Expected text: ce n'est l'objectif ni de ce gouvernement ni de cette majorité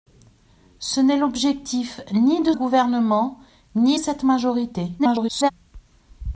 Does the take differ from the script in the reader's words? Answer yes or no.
yes